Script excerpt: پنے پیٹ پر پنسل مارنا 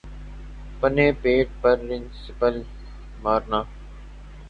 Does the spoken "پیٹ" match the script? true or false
true